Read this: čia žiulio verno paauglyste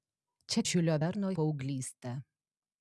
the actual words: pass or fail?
pass